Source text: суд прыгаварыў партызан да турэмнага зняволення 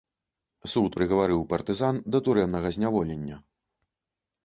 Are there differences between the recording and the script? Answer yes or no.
no